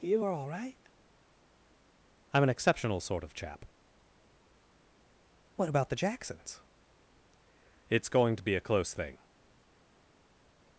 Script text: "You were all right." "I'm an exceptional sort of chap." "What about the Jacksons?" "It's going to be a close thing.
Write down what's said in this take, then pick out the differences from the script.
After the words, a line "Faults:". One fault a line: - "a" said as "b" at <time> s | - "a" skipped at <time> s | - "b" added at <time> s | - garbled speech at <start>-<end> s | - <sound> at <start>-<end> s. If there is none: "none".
"You are all right." "I'm an exceptional sort of chap." "What about the Jacksons?" "It's going to be a close thing.
Faults:
- "were" said as "are" at 0.2 s